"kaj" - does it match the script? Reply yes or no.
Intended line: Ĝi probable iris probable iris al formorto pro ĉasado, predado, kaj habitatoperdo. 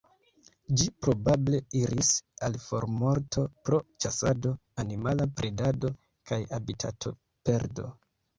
yes